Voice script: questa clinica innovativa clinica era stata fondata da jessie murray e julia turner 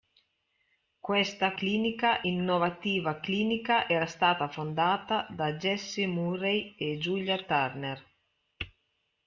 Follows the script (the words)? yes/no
yes